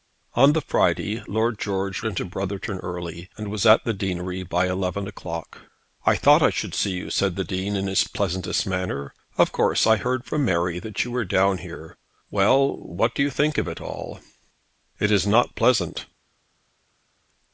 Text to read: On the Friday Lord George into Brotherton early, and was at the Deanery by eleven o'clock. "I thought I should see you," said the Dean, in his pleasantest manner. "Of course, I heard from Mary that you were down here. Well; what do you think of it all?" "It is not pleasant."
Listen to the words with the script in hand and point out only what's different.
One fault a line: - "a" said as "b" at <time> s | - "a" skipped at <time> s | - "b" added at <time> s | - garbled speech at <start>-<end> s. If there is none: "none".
none